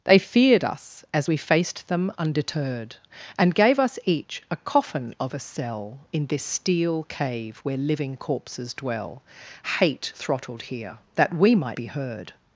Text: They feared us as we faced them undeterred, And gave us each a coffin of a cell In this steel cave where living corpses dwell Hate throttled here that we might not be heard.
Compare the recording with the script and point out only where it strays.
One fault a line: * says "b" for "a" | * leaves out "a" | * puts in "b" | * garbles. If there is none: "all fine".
* leaves out "not"